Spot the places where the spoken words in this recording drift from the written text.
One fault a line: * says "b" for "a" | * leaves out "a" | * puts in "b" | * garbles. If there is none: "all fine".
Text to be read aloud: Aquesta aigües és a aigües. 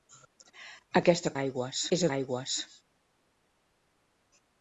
all fine